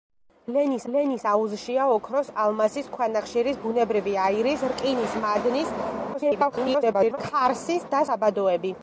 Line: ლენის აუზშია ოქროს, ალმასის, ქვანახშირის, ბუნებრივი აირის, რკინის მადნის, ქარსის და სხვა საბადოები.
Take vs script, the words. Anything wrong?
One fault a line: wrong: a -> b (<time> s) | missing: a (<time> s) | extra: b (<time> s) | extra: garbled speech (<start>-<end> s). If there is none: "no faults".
extra: ლენის (0.9 s)
extra: garbled speech (6.1-7.2 s)
missing: სხვა (8.0 s)